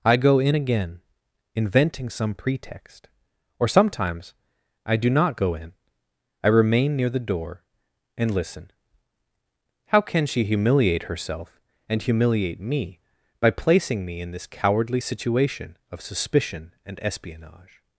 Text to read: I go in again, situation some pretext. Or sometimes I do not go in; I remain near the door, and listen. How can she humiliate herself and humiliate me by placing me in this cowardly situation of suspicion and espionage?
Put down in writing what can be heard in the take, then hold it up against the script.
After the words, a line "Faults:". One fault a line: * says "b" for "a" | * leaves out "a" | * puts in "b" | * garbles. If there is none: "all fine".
I go in again, inventing some pretext. Or sometimes I do not go in; I remain near the door, and listen. How can she humiliate herself and humiliate me by placing me in this cowardly situation of suspicion and espionage?
Faults:
* says "inventing" for "situation"